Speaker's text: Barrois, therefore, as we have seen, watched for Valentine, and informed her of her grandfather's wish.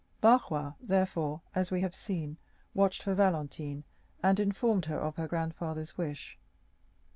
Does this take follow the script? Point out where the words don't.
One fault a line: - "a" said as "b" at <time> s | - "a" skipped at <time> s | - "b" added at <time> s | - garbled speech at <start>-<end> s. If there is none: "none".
none